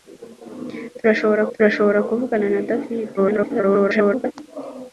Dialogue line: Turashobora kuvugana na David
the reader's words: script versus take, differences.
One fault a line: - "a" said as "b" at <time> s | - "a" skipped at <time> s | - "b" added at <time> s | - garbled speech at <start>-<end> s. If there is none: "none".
- "turashobora" added at 1.5 s
- garbled speech at 3.2-4.3 s